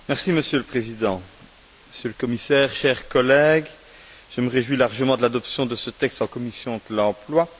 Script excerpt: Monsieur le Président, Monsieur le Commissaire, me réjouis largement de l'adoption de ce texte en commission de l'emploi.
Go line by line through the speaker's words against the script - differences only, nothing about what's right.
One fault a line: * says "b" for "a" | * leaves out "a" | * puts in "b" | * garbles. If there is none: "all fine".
* puts in "chers collègues je"